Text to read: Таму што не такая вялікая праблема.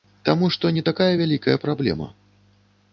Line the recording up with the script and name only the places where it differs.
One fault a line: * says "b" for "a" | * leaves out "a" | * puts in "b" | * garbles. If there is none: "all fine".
all fine